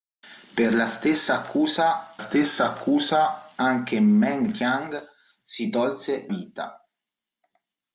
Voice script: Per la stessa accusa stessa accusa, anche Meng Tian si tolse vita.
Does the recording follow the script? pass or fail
pass